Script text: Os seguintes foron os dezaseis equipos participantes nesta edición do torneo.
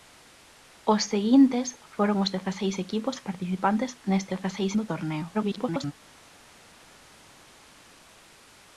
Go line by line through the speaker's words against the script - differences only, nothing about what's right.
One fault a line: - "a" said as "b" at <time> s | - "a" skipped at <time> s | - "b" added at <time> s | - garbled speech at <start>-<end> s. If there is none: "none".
- "edición" said as "dezaseis" at 4.3 s
- garbled speech at 5.3-5.9 s